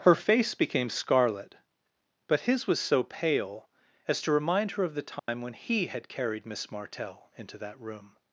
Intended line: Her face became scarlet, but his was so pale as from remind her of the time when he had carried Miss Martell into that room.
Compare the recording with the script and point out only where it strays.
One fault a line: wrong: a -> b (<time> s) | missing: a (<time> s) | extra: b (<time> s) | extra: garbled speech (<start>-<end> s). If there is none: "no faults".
wrong: from -> to (4.2 s)